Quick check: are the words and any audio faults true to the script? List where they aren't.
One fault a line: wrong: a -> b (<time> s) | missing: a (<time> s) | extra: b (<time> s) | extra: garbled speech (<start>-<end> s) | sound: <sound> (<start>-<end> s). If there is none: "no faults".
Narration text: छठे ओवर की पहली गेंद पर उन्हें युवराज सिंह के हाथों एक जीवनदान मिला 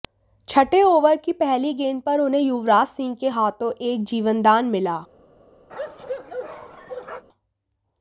sound: bark (5.7-7.2 s)